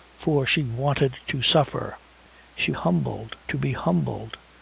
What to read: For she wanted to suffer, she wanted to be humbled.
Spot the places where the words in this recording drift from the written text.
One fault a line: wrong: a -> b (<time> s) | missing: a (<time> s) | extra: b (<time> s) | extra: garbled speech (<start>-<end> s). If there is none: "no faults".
wrong: wanted -> humbled (2.7 s)